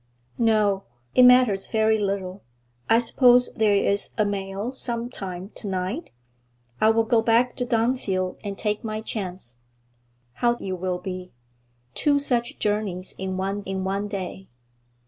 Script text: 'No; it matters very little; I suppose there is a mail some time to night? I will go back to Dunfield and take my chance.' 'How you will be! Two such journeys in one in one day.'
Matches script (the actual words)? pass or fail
pass